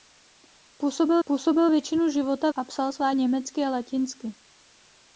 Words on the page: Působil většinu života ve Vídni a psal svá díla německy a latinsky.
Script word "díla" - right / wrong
wrong